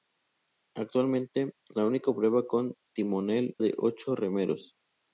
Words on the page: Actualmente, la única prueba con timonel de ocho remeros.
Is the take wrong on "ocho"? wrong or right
right